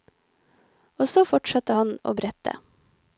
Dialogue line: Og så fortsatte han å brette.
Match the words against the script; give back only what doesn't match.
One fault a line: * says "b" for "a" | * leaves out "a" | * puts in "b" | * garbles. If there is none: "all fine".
all fine